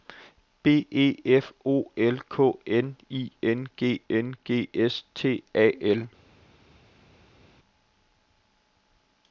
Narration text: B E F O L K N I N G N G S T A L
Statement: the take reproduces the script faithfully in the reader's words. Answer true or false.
true